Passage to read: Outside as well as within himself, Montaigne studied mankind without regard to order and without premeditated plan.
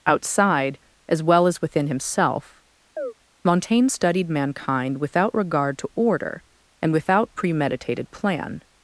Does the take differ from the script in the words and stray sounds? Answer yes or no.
yes